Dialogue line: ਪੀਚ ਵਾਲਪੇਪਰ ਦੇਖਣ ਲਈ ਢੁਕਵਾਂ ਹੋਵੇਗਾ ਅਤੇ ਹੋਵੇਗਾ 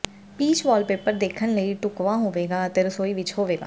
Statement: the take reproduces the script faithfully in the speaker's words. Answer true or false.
false